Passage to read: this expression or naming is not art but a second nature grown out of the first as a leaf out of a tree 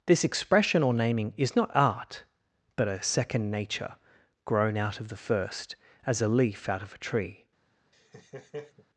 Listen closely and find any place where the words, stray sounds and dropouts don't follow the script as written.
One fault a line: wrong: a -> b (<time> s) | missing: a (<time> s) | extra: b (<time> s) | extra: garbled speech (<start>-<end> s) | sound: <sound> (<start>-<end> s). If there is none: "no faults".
sound: laugh (7.9-8.9 s)